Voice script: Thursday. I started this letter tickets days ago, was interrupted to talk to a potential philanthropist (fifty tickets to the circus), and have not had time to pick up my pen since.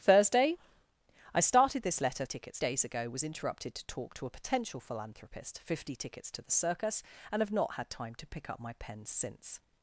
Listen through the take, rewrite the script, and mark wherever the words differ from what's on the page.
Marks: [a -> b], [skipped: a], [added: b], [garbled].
Thursday. I started this letter tickets days ago, was interrupted to talk to a potential philanthropist (fifty tickets to the circus), and have not had time to pick up my pen since.